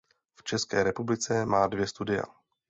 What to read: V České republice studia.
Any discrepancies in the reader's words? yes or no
yes